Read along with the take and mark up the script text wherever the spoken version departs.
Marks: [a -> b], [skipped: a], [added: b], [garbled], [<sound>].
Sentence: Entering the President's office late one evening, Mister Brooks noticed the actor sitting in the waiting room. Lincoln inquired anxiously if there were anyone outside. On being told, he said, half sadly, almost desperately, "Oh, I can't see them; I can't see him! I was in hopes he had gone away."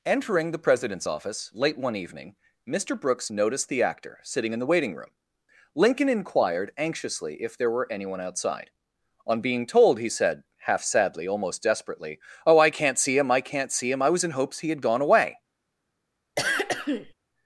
Entering the President's office late one evening, Mister Brooks noticed the actor sitting in the waiting room. Lincoln inquired anxiously if there were anyone outside. On being told, he said, half sadly, almost desperately, "Oh, I can't see [them; -> him] I can't see him! I was in hopes he had gone away." [throat clearing]